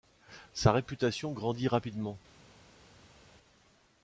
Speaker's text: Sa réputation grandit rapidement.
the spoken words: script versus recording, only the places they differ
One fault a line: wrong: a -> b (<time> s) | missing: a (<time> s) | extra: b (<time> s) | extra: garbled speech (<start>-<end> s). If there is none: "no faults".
no faults